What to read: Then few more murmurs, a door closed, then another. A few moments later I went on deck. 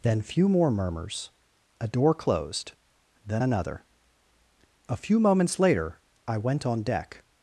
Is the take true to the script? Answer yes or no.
yes